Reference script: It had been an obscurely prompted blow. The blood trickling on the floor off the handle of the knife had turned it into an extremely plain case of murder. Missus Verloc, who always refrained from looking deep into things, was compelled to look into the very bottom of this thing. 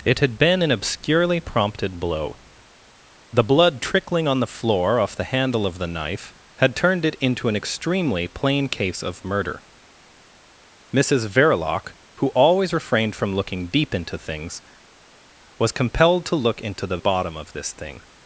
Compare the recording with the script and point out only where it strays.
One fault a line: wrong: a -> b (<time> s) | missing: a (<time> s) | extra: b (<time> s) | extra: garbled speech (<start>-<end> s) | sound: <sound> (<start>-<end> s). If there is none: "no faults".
missing: very (17.0 s)